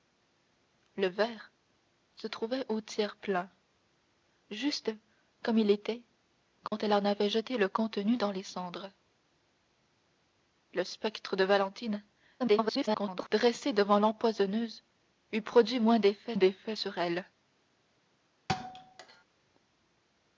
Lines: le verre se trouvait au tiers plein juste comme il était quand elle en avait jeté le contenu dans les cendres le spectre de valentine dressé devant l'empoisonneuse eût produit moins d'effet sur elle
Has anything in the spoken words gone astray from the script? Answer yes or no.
yes